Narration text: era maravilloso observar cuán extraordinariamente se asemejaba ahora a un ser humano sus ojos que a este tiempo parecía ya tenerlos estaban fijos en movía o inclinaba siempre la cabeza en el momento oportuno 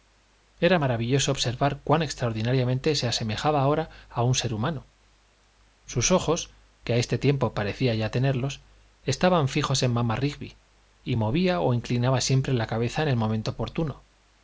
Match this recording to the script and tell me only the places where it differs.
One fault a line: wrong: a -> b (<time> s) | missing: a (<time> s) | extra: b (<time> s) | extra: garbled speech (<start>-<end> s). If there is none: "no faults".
extra: mamá rigby y (9.9 s)